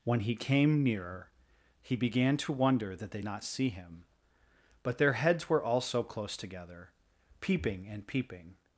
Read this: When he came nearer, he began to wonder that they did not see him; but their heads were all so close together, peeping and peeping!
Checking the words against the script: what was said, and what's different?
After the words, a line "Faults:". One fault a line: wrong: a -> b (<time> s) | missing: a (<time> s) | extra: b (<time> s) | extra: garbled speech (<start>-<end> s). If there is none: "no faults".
When he came nearer, he began to wonder that they not see him; but their heads were all so close together, peeping and peeping!
Faults:
missing: did (3.2 s)